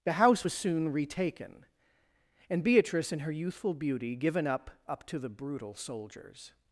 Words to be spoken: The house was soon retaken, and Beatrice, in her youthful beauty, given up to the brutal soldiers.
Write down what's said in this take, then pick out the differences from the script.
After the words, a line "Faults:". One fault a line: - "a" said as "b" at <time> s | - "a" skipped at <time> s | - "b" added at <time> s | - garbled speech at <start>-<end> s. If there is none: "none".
The house was soon retaken, and Beatrice, in her youthful beauty, given up up to the brutal soldiers.
Faults:
- "up" added at 4.9 s